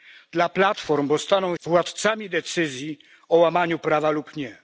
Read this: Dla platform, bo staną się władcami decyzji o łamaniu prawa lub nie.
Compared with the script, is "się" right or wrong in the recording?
wrong